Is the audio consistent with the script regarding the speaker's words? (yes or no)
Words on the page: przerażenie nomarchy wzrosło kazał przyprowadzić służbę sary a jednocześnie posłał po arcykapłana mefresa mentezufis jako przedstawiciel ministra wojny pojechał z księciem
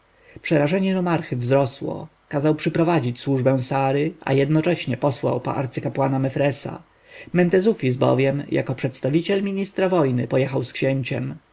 no